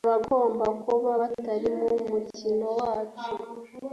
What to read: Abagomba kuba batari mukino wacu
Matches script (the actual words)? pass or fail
fail